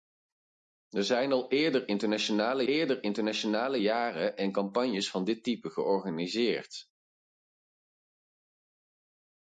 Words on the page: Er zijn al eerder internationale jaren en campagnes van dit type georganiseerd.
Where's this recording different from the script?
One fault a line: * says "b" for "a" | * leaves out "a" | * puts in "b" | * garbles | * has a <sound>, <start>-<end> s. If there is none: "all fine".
* puts in "eerder internationale"